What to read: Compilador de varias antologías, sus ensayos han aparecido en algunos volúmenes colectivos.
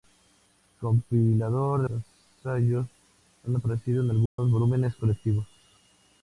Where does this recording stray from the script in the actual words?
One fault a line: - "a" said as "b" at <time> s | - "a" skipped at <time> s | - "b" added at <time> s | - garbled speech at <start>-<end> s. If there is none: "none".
- "varias antologías sus" skipped at 1.9 s